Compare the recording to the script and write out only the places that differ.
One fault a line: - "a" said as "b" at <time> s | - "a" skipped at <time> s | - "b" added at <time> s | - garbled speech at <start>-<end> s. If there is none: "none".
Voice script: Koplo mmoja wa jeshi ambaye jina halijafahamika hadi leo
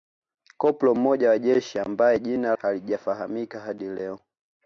none